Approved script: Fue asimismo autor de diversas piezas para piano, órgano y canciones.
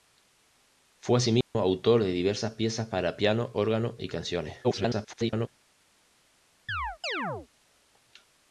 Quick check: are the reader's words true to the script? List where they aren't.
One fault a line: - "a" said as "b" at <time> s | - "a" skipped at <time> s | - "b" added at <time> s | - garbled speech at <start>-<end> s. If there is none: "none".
- garbled speech at 4.6-5.5 s